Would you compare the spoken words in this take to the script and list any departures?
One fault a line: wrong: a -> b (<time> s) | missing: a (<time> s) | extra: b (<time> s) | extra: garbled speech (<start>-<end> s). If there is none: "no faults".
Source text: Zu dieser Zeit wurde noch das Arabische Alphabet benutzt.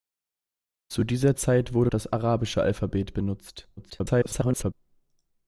missing: noch (1.9 s)
extra: garbled speech (3.8-4.7 s)